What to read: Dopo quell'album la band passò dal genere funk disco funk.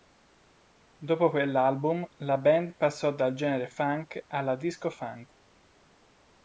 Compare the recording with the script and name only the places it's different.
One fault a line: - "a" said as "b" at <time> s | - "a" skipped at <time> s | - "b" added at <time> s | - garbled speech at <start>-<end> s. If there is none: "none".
- "alla" added at 4.3 s